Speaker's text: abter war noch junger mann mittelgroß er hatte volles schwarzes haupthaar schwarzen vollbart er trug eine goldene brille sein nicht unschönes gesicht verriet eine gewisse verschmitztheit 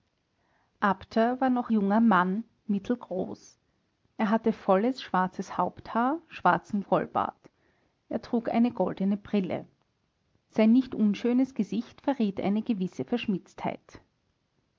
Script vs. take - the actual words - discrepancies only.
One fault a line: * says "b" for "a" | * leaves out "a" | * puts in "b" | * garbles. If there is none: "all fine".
all fine